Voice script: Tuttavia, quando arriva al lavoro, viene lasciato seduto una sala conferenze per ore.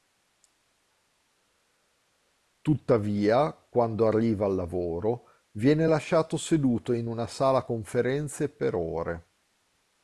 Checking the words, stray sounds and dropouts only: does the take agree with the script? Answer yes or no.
no